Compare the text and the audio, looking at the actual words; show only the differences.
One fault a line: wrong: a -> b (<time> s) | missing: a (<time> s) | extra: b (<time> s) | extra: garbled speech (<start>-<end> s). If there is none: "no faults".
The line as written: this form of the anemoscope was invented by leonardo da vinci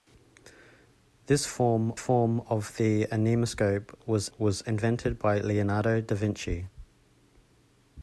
extra: form (1.9 s)
extra: was (4.4 s)